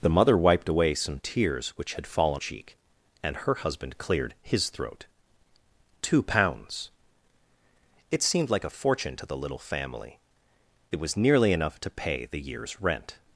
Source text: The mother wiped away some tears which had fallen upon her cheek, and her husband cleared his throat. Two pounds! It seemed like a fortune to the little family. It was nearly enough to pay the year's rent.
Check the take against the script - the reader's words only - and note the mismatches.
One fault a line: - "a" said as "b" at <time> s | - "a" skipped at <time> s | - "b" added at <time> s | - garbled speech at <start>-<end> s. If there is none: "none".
- "upon her" skipped at 2.4 s